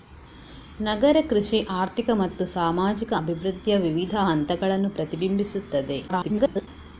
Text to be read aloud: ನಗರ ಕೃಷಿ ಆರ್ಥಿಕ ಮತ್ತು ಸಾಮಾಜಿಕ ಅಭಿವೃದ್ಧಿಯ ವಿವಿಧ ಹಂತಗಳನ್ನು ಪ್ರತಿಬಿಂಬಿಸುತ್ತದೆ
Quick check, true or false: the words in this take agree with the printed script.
false